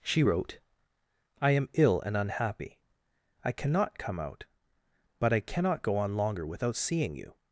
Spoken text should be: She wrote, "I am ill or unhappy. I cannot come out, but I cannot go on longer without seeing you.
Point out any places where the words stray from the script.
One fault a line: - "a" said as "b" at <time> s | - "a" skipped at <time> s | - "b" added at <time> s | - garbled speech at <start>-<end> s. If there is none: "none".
- "or" said as "and" at 2.0 s